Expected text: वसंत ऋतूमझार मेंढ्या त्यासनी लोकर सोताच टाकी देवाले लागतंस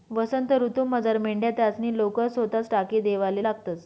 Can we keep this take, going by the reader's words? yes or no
yes